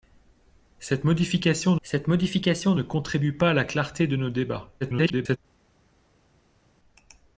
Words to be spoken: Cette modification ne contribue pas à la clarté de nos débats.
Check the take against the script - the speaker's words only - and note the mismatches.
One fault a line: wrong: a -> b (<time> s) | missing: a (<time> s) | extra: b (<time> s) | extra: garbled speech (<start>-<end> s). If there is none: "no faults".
extra: cette modification (1.8 s)
extra: garbled speech (4.8-5.4 s)